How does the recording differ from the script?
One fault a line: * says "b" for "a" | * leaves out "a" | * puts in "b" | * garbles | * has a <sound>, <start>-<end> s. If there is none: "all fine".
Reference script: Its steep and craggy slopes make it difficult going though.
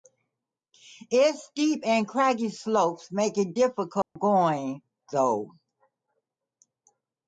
* has a dropout, 4.0-4.2 s